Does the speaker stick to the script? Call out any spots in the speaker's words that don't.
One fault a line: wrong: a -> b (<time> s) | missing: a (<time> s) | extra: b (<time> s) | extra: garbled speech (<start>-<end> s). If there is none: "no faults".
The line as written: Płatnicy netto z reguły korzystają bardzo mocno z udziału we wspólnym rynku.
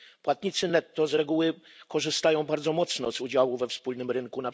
no faults